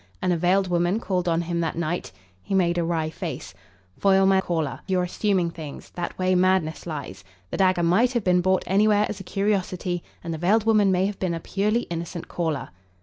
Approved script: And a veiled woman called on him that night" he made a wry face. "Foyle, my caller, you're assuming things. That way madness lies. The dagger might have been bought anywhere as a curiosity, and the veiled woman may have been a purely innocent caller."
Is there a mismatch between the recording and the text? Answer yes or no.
no